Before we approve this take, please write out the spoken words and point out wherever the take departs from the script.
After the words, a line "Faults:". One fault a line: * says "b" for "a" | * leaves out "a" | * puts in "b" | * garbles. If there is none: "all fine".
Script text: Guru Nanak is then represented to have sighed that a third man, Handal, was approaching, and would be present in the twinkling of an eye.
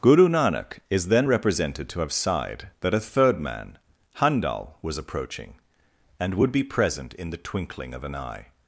Guru Nanak is then represented to have sighed that a third man, Handal, was approaching, and would be present in the twinkling of an eye.
Faults:
all fine